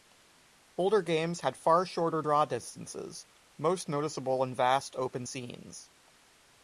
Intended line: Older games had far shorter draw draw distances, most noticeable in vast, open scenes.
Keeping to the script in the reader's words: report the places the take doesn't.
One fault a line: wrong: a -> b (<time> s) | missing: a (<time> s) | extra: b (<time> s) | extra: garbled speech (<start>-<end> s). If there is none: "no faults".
missing: draw (2.4 s)